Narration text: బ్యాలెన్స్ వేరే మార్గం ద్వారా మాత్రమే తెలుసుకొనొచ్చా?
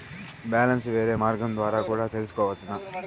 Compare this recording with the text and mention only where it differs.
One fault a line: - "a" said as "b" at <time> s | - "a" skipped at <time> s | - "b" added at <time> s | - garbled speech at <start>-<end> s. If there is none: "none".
- "మాత్రమే" said as "కూడా" at 1.9 s